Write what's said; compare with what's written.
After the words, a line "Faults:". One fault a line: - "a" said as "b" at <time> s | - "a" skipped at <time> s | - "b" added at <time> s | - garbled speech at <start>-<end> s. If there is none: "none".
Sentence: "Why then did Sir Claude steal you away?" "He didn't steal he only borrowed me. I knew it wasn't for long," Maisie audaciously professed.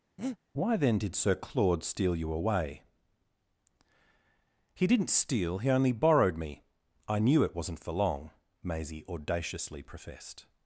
"Why then did Sir Claude steal you away?" "He didn't steal he only borrowed me. I knew it wasn't for long," Maisie audaciously professed.
Faults:
none